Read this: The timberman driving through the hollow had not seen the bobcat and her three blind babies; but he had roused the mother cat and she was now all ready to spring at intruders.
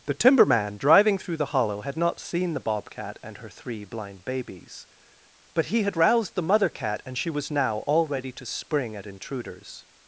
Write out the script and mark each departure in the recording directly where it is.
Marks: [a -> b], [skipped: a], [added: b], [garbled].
The timberman driving through the hollow had not seen the bobcat and her three blind babies; but he had roused the mother cat and she was now all ready to spring at intruders.